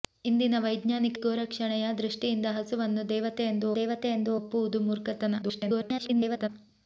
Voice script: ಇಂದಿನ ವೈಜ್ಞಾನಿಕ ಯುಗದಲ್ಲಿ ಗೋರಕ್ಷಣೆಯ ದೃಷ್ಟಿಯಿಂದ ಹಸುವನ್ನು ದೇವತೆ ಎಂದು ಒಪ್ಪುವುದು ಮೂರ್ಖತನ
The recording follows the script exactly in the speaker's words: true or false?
false